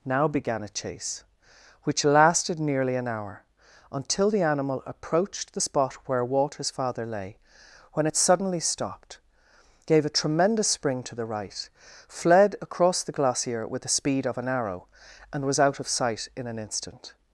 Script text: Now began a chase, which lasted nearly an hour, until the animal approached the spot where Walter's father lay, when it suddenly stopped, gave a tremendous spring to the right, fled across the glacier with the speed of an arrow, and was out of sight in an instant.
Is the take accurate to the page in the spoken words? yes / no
yes